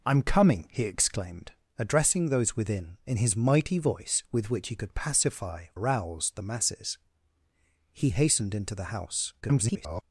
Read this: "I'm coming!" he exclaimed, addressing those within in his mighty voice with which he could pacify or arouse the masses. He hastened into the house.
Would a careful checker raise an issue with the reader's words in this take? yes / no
yes